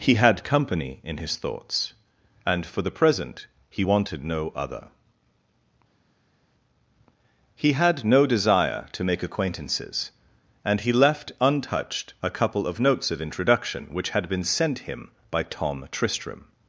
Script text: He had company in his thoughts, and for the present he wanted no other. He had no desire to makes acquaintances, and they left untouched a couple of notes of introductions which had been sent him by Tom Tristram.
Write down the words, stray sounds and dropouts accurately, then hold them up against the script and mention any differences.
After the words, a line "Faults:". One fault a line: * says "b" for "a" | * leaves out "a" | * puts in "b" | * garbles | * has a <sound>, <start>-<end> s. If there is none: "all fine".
He had company in his thoughts, and for the present he wanted no other. He had no desire to make acquaintances, and he left untouched a couple of notes of introduction which had been sent him by Tom Tristram.
Faults:
* says "make" for "makes"
* says "he" for "they"
* says "introduction" for "introductions"